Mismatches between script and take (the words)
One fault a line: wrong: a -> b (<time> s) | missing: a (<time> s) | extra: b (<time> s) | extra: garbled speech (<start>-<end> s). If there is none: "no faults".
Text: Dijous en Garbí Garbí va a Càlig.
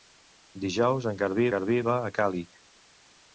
no faults